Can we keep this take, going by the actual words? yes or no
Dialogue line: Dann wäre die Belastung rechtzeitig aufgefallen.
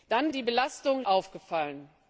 no